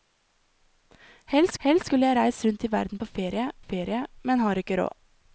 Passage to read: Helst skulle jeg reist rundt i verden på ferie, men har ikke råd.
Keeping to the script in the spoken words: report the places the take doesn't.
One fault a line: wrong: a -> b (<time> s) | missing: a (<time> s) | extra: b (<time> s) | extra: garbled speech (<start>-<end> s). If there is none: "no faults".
extra: helst (1.6 s)
extra: ferie (3.6 s)